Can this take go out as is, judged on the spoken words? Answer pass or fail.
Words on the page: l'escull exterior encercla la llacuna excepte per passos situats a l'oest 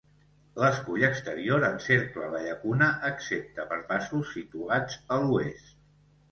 pass